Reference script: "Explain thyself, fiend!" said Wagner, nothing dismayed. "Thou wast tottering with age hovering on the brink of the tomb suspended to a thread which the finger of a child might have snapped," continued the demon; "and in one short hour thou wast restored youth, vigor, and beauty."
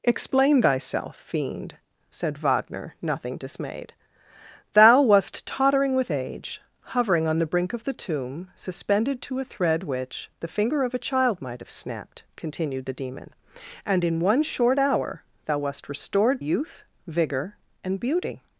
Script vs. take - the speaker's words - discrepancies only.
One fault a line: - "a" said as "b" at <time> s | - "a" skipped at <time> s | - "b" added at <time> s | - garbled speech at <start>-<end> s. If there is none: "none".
none